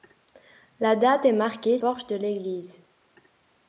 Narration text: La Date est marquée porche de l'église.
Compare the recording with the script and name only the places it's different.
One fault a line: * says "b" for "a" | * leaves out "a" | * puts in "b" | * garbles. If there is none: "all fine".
all fine